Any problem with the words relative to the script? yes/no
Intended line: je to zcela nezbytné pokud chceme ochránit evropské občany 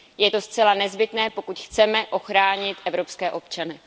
no